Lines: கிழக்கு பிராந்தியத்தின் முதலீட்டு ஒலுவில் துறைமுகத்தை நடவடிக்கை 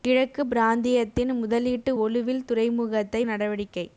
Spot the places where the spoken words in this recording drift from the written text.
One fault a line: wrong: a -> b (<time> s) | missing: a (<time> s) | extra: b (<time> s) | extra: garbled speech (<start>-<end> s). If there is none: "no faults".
no faults